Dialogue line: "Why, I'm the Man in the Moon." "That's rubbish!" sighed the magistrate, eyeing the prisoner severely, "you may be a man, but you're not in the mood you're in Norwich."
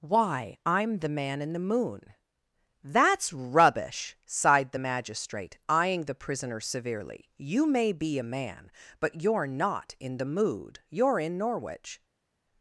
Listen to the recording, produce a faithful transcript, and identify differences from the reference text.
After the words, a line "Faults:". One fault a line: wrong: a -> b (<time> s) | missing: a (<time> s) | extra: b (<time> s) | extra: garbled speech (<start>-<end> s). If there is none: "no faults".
"Why, I'm the Man in the Moon." "That's rubbish!" sighed the magistrate, eyeing the prisoner severely, "you may be a man, but you're not in the mood you're in Norwich."
Faults:
no faults